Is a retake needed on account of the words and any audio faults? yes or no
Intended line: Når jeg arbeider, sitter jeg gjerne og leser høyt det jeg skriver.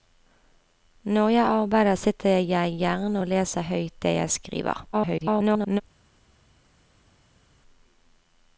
yes